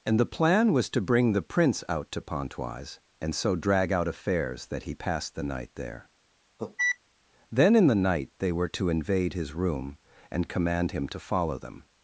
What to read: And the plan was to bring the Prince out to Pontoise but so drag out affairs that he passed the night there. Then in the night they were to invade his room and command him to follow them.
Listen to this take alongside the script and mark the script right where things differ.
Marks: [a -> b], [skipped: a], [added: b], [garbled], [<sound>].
And the plan was to bring the Prince out to Pontoise [but -> and] so drag out affairs that he passed the night there. [cough] Then in the night they were to invade his room and command him to follow them.